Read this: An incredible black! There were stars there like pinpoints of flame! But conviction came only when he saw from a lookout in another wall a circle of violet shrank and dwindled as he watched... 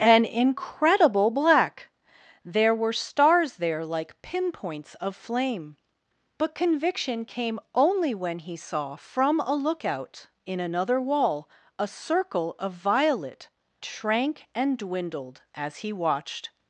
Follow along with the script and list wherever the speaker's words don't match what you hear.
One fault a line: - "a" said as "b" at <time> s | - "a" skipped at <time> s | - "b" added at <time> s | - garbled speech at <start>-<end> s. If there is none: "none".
none